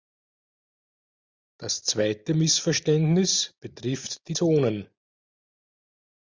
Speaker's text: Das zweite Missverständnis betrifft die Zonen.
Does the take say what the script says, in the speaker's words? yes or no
yes